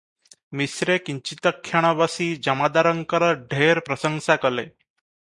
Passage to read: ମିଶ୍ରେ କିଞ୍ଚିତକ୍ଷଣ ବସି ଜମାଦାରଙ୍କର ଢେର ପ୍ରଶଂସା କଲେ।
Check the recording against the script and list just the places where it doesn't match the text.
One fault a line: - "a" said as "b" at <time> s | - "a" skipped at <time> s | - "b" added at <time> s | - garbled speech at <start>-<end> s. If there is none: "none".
none